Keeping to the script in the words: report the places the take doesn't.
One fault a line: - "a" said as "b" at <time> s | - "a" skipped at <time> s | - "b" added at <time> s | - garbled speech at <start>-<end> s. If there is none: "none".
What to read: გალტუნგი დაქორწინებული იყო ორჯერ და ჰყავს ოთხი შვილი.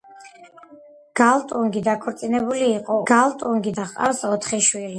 - "ორჯერ" said as "გალტუნგი" at 3.1 s